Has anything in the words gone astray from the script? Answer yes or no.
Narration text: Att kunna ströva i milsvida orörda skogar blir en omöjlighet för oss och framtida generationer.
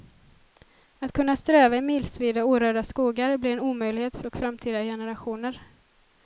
yes